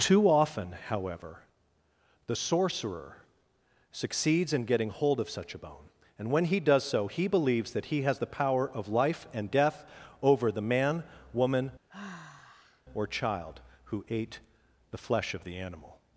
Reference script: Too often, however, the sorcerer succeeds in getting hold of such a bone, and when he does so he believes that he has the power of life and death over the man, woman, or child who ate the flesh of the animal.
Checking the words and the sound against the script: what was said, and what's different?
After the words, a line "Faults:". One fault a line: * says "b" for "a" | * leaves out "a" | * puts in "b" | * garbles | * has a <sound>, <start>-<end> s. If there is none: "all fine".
Too often, however, the sorcerer succeeds in getting hold of such a bone, and when he does so he believes that he has the power of life and death over the man, woman, or child who ate the flesh of the animal.
Faults:
* has a sigh, 11.9-12.8 s